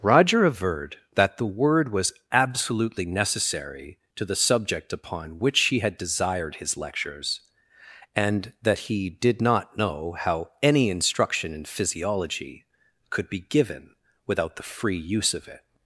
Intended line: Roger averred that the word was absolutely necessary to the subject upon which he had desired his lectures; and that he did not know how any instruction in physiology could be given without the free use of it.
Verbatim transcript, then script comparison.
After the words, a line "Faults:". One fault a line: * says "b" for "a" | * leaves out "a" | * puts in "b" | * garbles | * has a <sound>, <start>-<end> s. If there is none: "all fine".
Roger averred that the word was absolutely necessary to the subject upon which he had desired his lectures; and that he did not know how any instruction in physiology could be given without the free use of it.
Faults:
all fine